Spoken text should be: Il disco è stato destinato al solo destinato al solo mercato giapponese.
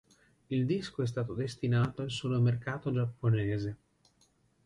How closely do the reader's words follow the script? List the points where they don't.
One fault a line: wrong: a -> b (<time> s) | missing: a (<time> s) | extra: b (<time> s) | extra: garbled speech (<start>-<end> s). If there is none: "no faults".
missing: destinato al solo (2.4 s)